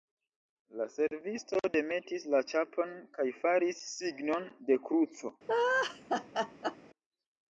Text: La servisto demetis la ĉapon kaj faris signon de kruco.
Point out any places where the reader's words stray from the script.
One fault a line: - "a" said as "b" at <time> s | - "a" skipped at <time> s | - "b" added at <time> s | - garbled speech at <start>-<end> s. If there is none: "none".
none